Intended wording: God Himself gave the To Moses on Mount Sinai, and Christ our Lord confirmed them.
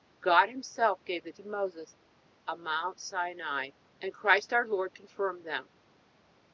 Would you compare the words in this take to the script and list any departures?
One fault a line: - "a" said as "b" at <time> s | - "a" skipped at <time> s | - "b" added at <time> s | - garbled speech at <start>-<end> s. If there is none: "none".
none